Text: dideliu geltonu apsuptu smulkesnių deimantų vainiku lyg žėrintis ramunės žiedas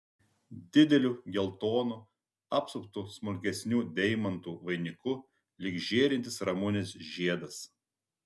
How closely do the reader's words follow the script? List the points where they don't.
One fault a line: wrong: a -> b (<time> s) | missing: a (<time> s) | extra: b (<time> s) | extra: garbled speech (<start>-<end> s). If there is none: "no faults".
no faults